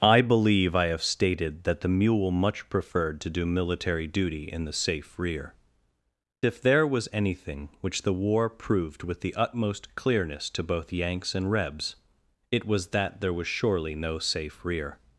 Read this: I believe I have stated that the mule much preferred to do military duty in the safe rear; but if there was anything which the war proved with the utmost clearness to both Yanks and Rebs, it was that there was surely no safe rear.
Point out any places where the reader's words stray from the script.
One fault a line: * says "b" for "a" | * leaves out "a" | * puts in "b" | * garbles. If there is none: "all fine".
* leaves out "but"